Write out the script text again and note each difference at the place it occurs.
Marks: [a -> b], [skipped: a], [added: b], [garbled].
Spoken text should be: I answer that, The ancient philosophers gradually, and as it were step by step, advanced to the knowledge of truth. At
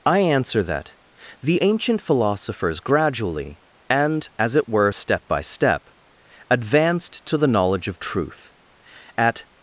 I answer that, The ancient philosophers gradually, and as it were step by step, advanced to the knowledge of truth. At